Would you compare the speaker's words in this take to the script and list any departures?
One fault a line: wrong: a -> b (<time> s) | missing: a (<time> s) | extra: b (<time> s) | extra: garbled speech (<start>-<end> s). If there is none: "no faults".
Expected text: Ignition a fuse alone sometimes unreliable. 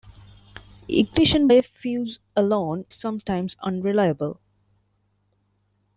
no faults